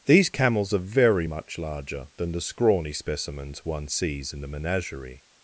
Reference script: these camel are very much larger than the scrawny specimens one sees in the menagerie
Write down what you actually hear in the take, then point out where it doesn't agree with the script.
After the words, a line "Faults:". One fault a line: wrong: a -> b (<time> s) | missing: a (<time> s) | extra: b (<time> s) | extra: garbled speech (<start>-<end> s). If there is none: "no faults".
these camels are very much larger than the scrawny specimens one sees in the menagerie
Faults:
wrong: camel -> camels (0.3 s)